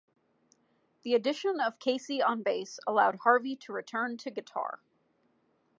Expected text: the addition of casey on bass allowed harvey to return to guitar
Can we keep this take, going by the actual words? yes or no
yes